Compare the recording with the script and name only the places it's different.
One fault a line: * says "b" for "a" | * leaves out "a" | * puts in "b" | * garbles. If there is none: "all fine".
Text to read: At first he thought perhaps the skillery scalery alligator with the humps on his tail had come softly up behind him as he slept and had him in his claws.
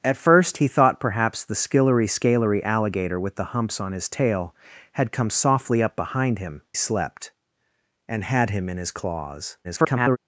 * leaves out "as he"
* garbles